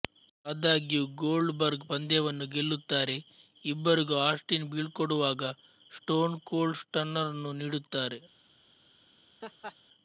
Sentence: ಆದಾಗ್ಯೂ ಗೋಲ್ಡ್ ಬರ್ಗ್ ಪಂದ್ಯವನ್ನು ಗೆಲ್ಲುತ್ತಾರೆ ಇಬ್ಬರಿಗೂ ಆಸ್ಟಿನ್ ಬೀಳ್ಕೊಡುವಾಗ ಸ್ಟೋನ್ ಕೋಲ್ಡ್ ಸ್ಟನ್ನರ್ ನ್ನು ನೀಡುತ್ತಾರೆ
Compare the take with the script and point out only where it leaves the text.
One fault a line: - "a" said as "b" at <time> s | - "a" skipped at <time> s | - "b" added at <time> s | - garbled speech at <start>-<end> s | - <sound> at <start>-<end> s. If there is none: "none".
- laugh at 9.4-9.8 s